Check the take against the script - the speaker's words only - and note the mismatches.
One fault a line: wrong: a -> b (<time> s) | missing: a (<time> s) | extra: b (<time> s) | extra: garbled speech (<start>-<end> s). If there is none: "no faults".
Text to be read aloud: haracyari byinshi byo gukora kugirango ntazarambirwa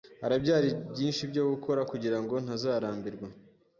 no faults